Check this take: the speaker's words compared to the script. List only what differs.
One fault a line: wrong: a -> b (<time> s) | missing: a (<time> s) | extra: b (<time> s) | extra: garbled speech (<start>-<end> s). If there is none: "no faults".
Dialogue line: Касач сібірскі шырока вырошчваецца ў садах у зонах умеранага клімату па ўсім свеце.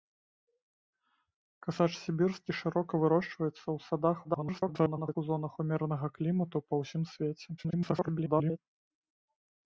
extra: garbled speech (4.2-5.2 s)
extra: garbled speech (7.6-8.6 s)